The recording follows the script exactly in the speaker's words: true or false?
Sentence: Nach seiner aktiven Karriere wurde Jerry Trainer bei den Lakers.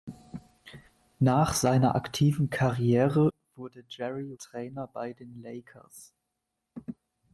true